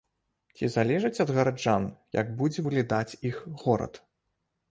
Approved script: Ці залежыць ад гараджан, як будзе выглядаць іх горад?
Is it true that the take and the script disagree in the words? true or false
false